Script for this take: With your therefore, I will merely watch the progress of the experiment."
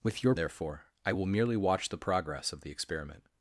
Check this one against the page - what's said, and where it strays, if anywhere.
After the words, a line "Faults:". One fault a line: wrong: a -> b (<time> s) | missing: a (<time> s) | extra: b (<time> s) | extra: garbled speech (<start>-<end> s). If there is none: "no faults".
With your therefore, I will merely watch the progress of the experiment."
Faults:
no faults